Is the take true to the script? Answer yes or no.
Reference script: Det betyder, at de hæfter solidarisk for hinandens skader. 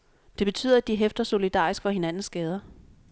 yes